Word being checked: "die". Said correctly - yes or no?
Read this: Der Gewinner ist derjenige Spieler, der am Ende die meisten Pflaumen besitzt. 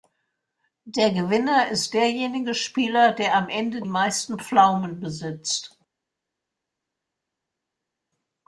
no